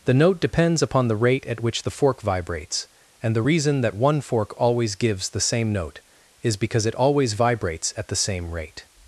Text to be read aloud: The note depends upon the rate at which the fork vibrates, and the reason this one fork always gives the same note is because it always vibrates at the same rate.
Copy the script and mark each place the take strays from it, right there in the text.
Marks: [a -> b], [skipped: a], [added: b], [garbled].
The note depends upon the rate at which the fork vibrates, and the reason [this -> that] one fork always gives the same note is because it always vibrates at the same rate.